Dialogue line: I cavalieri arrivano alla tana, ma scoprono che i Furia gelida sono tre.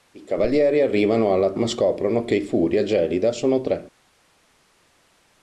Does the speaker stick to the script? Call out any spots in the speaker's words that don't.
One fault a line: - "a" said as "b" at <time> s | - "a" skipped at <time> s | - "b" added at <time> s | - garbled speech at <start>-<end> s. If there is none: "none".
- "tana" skipped at 1.5 s